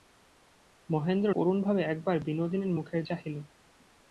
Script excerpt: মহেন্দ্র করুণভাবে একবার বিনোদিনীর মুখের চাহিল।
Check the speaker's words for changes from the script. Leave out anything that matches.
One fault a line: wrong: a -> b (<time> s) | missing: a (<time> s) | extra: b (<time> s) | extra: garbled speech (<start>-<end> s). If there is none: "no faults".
no faults